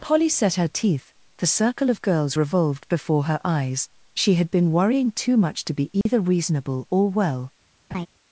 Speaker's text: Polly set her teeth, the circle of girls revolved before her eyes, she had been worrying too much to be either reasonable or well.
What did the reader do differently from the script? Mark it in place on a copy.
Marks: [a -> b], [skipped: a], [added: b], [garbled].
Polly set her teeth, the circle of girls revolved before her eyes, she had been worrying too much to be either reasonable or well.